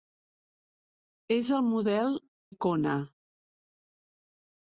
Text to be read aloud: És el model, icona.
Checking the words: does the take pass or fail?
pass